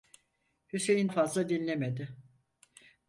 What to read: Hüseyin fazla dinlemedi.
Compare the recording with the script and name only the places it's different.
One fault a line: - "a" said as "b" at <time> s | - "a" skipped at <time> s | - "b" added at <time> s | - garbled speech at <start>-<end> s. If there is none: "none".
none